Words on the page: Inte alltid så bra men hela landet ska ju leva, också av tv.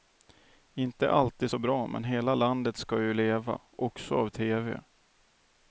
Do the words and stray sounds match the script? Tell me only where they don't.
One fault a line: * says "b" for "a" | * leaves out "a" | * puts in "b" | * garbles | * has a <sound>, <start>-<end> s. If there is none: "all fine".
all fine